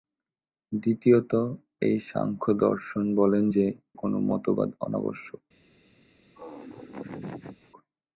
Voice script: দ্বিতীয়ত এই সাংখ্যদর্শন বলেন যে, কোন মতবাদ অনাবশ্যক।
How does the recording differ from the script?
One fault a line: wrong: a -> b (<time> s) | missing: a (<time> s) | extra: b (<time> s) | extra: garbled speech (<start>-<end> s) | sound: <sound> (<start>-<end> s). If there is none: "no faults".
sound: laugh (6.3-7.7 s)